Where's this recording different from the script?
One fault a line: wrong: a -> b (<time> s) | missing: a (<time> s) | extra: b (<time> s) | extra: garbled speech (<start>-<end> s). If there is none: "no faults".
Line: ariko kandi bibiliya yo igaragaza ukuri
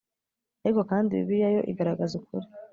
no faults